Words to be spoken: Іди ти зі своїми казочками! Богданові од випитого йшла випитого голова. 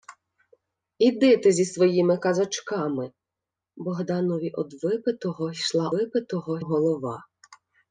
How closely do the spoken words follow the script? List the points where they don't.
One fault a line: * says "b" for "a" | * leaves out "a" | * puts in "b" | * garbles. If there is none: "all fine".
all fine